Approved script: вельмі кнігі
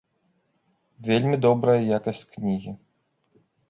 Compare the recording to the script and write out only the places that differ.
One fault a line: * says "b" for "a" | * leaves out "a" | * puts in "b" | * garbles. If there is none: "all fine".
* puts in "добрая якасць"